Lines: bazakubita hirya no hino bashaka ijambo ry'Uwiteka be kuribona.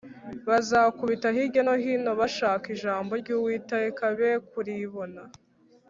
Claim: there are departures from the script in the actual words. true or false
false